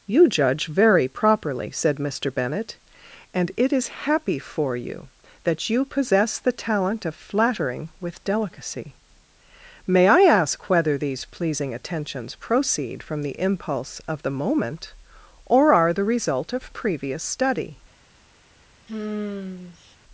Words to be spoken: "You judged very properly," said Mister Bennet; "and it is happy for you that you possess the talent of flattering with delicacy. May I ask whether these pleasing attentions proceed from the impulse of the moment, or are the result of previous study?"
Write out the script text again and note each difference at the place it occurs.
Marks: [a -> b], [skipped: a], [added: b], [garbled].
"You [judged -> judge] very properly," said Mister Bennet; "and it is happy for you that you possess the talent of flattering with delicacy. May I ask whether these pleasing attentions proceed from the impulse of the moment, or are the result of previous study?"